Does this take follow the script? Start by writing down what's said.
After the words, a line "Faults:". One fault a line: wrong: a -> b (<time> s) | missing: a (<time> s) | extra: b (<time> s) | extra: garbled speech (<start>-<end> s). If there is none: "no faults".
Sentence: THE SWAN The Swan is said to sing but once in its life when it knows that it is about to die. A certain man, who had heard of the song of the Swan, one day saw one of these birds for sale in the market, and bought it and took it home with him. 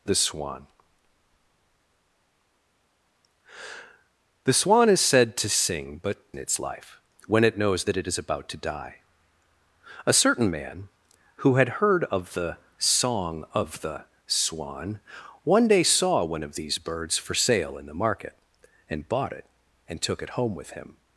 THE SWAN The Swan is said to sing but in its life when it knows that it is about to die. A certain man, who had heard of the song of the Swan, one day saw one of these birds for sale in the market, and bought it and took it home with him.
Faults:
missing: once (6.2 s)